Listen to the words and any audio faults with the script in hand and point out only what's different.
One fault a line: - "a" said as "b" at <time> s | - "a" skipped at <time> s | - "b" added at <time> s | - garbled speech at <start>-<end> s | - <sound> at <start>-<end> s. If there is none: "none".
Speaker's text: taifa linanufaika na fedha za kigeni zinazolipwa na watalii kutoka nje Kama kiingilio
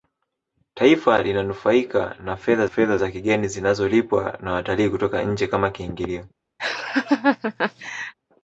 - "fedha" added at 2.6 s
- laugh at 6.6-8.1 s